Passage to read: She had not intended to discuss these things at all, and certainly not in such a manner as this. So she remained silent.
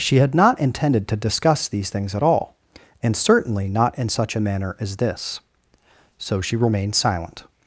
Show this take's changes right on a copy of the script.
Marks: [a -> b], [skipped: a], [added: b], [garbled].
She had not intended to discuss these things at all, and certainly not in such a manner as this. So she remained silent.